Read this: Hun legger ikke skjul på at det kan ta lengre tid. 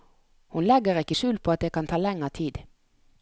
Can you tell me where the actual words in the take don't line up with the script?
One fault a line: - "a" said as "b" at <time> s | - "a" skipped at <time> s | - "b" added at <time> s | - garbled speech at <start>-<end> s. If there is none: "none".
none